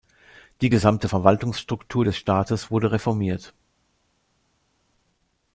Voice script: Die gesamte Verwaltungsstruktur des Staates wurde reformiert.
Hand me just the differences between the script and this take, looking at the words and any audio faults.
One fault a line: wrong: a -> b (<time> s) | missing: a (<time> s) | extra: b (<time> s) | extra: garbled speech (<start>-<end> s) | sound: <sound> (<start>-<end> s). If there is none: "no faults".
no faults